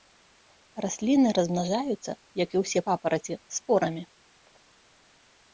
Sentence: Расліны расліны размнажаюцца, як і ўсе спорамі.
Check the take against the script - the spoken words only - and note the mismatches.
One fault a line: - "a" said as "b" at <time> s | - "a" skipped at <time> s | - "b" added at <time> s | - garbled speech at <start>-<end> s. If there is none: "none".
- "расліны" skipped at 1.3 s
- "папараці" added at 2.9 s